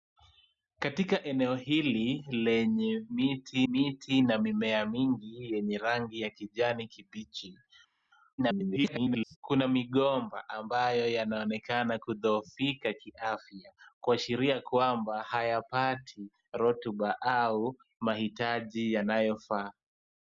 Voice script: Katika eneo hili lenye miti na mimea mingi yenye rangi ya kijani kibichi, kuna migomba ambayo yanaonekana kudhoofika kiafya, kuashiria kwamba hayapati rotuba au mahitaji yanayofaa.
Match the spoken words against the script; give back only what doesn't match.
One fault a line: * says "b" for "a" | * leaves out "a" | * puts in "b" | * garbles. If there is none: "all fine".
* puts in "miti"
* garbles